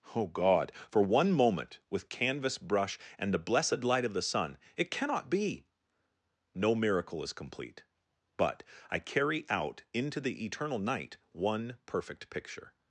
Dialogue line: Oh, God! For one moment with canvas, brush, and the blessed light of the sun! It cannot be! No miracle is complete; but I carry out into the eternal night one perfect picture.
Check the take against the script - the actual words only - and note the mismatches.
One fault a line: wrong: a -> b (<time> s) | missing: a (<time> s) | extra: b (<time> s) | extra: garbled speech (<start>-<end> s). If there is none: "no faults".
no faults